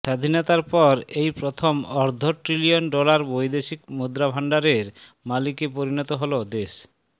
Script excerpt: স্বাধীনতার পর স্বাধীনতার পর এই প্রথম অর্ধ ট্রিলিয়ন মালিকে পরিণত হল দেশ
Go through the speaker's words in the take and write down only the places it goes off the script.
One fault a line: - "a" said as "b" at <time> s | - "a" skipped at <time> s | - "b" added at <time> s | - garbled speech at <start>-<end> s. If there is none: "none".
- "স্বাধীনতার পর" skipped at 0.9 s
- "ডলার বৈদেশিক মুদ্রাভান্ডারের" added at 2.9 s